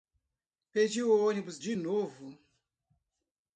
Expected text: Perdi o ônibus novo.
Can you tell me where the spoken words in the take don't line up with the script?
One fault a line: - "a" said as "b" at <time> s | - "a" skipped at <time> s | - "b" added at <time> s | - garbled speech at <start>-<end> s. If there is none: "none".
- "de" added at 1.6 s